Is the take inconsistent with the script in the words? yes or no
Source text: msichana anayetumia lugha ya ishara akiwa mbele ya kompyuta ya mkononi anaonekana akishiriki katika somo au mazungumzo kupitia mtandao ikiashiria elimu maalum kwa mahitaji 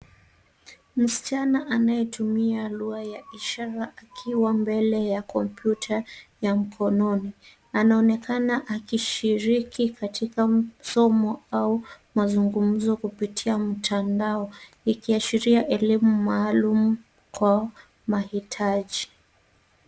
no